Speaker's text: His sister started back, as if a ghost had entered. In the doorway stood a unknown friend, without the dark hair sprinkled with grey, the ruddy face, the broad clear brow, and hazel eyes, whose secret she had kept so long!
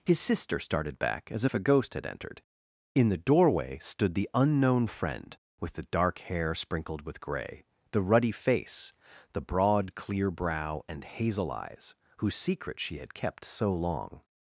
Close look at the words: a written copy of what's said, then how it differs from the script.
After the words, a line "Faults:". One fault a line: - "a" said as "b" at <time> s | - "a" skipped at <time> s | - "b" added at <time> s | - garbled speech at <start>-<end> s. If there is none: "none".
His sister started back, as if a ghost had entered. In the doorway stood the unknown friend, with the dark hair sprinkled with grey, the ruddy face, the broad clear brow, and hazel eyes, whose secret she had kept so long!
Faults:
- "a" said as "the" at 4.1 s
- "without" said as "with" at 5.6 s